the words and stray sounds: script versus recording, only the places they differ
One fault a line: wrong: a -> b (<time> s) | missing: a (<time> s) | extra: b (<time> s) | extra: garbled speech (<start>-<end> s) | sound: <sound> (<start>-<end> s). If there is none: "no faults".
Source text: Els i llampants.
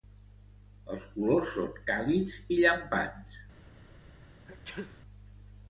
extra: colors són càlids (1.2 s)
sound: sneeze (4.5-5.0 s)